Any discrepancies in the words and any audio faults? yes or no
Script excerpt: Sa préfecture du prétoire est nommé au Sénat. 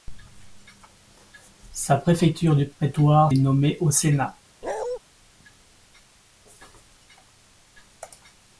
yes